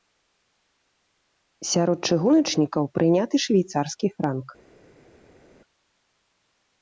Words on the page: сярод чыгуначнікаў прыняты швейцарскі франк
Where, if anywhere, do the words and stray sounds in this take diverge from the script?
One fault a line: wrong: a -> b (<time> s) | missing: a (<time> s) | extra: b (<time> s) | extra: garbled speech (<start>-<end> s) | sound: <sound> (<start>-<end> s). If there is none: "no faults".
no faults